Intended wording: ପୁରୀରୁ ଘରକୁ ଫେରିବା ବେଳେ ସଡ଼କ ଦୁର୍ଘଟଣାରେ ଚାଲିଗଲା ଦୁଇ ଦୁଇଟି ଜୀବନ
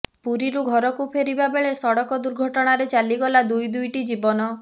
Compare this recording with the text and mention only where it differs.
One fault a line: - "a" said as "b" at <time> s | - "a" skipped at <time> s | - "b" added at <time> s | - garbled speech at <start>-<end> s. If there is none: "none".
none